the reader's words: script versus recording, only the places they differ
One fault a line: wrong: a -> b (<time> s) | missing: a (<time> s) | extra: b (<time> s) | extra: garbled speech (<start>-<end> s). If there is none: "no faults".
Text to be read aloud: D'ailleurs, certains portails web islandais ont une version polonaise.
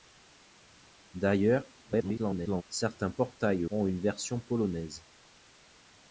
extra: garbled speech (1.8-2.6 s)
missing: web islandais (3.6 s)